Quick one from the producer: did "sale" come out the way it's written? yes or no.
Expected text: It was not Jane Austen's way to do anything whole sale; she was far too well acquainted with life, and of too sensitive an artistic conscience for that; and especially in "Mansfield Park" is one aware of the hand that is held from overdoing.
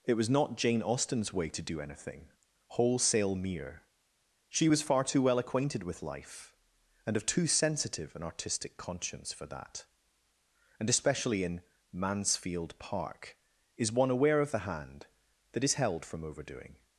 no